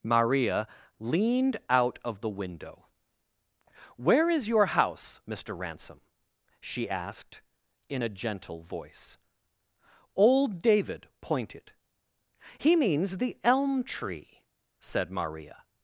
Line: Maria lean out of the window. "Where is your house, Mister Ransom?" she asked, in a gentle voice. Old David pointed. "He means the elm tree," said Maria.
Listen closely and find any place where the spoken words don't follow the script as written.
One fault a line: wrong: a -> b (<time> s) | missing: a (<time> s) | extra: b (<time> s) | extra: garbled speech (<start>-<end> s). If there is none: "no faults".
wrong: lean -> leaned (1.0 s)